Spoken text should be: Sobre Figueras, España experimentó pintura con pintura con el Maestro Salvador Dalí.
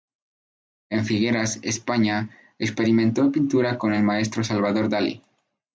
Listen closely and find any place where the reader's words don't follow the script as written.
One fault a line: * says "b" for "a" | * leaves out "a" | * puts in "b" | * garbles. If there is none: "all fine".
* says "En" for "Sobre"
* leaves out "pintura con"